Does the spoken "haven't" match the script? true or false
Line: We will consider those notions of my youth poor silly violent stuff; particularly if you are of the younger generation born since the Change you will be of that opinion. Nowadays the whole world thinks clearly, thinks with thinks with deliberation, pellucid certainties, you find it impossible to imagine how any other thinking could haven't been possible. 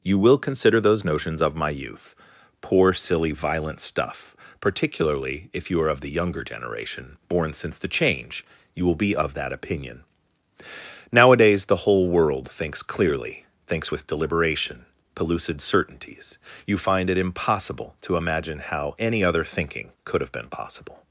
false